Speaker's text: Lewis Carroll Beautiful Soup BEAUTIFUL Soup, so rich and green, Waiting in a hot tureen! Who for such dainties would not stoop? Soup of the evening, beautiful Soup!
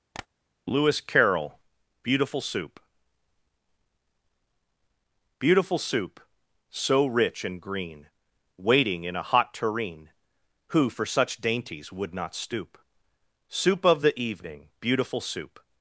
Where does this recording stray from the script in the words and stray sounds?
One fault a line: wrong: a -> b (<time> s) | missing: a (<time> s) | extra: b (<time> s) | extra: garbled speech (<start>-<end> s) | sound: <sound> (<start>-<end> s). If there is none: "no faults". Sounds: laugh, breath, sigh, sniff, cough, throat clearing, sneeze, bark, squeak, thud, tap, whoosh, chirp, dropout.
sound: tap (0.1-0.3 s)